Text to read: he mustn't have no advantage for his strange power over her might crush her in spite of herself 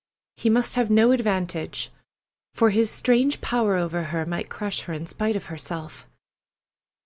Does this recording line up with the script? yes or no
no